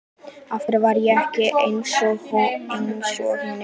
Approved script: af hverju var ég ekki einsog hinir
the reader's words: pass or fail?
pass